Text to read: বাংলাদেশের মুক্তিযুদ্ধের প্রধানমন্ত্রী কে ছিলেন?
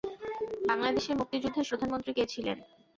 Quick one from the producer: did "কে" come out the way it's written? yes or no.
yes